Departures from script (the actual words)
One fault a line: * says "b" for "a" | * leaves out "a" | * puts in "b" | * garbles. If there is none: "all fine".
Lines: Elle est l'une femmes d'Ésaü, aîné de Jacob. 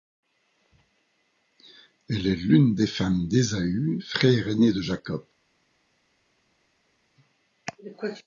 * puts in "des"
* puts in "frère"